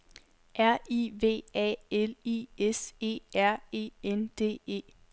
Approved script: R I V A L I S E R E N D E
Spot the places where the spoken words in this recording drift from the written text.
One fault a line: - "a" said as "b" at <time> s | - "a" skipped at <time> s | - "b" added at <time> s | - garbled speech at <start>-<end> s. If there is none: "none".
none